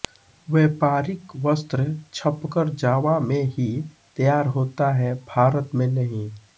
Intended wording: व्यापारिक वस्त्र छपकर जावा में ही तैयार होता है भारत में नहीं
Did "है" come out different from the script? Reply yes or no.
no